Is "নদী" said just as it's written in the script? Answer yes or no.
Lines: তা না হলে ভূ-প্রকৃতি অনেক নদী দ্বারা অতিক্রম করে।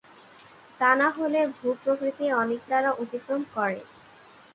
no